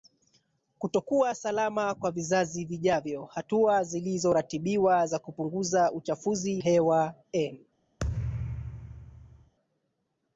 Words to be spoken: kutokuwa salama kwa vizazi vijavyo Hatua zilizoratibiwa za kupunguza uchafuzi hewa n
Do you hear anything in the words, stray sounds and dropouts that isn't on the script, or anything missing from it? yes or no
yes